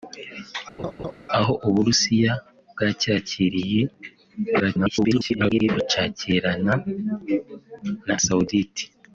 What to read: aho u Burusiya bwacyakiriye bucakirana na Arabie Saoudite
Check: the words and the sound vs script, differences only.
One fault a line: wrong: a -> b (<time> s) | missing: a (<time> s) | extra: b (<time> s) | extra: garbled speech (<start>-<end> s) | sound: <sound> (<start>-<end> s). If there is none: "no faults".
sound: laugh (0.8-1.1 s)
extra: garbled speech (4.6-5.7 s)
missing: Arabie (8.1 s)